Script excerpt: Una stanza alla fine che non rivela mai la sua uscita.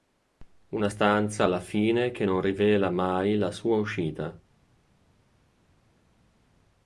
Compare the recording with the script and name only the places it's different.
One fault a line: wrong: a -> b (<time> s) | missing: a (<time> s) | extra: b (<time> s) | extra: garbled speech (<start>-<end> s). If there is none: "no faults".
no faults